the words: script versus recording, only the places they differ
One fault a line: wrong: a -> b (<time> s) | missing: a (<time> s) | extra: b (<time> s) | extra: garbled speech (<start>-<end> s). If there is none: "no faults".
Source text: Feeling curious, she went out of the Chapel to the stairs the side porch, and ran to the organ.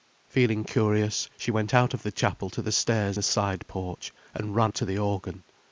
no faults